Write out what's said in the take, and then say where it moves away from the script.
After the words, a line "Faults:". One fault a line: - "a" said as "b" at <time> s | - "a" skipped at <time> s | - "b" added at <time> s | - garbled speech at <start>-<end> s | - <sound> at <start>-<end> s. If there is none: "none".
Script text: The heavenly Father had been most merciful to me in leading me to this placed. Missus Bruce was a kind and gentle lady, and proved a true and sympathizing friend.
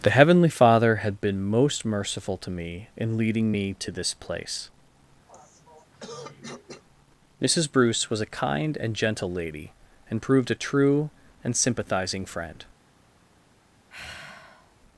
The heavenly Father had been most merciful to me in leading me to this place. Missus Bruce was a kind and gentle lady, and proved a true and sympathizing friend.
Faults:
- "placed" said as "place" at 4.1 s
- throat clearing at 5.3-6.8 s
- sigh at 13.9-14.7 s